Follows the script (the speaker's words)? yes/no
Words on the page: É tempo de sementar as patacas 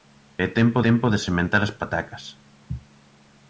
no